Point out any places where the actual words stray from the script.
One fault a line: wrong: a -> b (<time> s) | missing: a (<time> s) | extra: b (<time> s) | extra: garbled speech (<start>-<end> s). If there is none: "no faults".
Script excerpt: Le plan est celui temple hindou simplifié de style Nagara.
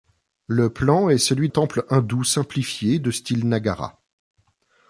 no faults